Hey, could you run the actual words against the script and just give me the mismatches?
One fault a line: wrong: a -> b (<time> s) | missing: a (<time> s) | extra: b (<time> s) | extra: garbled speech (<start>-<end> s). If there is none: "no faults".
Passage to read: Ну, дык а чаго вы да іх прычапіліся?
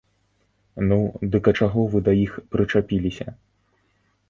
no faults